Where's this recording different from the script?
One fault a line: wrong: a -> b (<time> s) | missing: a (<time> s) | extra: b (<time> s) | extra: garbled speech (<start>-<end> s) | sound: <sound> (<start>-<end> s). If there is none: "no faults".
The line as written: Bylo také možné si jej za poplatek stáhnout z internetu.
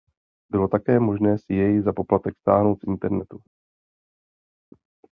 no faults